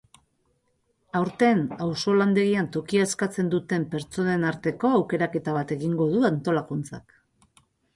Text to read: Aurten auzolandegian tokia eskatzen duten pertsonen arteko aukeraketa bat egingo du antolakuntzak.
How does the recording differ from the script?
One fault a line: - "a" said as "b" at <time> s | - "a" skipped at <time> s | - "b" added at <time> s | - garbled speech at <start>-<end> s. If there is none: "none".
none